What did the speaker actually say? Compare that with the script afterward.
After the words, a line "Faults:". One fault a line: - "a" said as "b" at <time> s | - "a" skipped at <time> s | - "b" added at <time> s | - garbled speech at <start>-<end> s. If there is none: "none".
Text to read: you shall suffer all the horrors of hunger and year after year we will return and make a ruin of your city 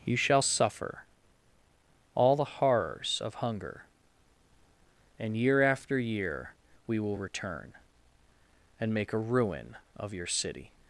you shall suffer all the horrors of hunger and year after year we will return and make a ruin of your city
Faults:
none